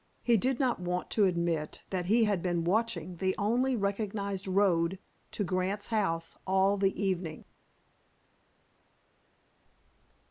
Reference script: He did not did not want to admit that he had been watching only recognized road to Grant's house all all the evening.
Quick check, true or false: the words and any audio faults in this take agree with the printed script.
false